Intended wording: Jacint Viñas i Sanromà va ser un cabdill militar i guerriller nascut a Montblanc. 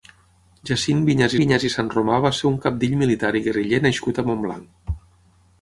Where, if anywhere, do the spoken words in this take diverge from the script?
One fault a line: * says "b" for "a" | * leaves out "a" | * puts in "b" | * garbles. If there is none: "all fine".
* puts in "Viñas"